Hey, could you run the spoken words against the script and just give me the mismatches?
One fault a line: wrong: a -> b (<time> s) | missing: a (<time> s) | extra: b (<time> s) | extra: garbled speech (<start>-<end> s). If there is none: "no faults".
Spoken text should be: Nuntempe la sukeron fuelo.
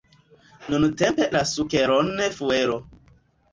no faults